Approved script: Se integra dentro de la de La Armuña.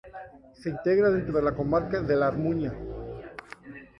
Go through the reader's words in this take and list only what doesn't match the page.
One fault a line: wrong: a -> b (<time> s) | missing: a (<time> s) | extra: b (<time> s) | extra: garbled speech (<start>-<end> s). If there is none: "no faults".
extra: comarca (1.5 s)